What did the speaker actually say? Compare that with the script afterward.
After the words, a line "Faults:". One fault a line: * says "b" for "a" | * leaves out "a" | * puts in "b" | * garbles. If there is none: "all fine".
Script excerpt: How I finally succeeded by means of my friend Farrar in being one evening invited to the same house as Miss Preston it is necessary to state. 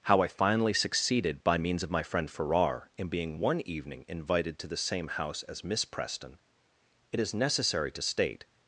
How I finally succeeded by means of my friend Farrar in being one evening invited to the same house as Miss Preston it is necessary to state.
Faults:
all fine